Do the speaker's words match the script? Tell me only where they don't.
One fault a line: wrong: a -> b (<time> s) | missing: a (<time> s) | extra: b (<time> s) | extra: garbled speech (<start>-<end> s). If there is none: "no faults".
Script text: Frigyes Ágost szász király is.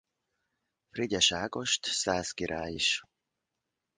no faults